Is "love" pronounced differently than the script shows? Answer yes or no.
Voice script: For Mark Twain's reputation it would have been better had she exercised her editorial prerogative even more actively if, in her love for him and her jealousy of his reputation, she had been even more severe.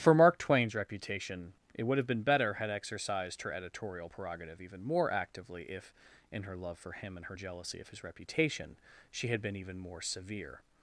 no